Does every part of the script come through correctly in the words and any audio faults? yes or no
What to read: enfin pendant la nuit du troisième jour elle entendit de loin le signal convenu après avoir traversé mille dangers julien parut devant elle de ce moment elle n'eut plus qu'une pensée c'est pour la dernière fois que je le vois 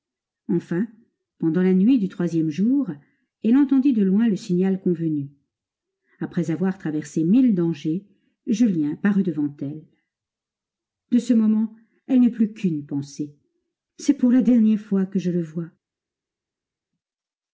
yes